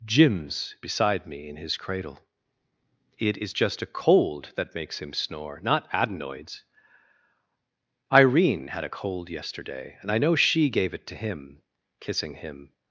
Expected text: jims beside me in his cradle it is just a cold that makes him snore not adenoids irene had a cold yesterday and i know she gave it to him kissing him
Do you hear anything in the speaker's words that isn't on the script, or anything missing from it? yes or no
no